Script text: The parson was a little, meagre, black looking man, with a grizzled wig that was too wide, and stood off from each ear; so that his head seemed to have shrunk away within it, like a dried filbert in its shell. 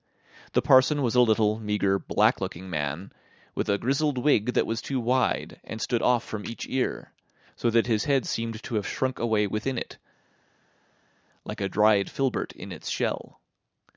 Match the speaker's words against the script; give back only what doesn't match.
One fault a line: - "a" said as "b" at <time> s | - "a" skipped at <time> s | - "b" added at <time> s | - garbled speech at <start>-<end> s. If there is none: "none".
none